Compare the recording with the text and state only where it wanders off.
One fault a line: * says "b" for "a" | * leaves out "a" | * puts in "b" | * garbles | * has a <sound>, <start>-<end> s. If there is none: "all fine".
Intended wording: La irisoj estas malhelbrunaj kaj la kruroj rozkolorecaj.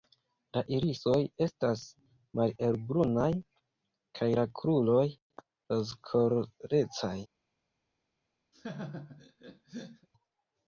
* has a laugh, 8.5-10.1 s